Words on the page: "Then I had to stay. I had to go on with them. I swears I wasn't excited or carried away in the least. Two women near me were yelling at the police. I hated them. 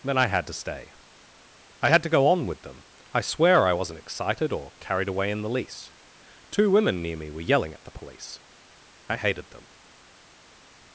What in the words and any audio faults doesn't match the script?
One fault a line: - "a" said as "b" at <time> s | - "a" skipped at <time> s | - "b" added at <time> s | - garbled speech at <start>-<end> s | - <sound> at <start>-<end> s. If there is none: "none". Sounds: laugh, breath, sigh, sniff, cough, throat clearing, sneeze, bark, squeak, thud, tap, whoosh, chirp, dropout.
- "swears" said as "swear" at 3.2 s